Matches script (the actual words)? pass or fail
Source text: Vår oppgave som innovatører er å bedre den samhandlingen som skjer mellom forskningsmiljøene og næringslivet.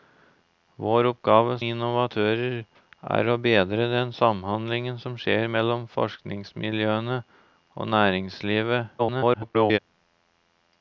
fail